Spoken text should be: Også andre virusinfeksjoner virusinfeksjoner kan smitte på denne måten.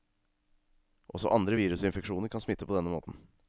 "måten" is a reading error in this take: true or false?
false